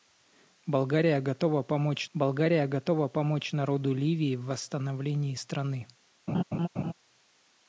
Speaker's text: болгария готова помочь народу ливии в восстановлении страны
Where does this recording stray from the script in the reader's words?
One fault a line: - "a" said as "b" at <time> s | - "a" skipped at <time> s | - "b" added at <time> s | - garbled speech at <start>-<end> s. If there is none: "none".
- "болгария готова помочь" added at 2.1 s